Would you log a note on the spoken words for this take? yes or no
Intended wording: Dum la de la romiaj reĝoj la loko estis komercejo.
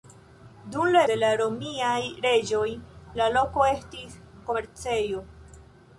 no